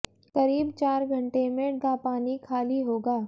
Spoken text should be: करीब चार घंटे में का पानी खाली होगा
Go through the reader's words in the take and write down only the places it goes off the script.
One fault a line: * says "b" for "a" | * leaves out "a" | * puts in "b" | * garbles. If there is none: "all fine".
all fine